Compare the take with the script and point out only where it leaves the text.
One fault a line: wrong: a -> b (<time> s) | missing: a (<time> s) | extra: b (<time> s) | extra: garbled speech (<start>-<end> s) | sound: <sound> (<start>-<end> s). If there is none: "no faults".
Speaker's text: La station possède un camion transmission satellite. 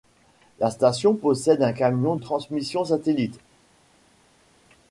no faults